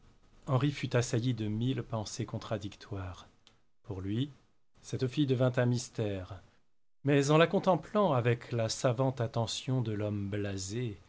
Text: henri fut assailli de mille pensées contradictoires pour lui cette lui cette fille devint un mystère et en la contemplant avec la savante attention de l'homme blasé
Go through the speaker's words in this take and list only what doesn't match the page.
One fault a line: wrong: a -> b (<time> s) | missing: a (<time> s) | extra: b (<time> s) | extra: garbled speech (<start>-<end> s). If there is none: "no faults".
missing: lui cette (5.1 s)
wrong: et -> mais (7.0 s)